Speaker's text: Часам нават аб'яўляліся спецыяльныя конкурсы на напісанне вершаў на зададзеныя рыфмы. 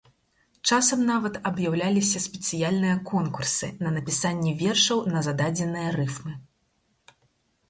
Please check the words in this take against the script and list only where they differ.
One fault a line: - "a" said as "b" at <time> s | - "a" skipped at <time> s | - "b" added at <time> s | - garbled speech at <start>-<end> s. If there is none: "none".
none